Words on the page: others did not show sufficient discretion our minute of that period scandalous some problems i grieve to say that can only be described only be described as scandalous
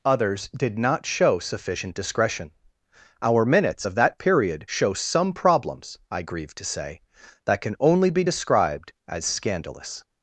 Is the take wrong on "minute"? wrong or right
wrong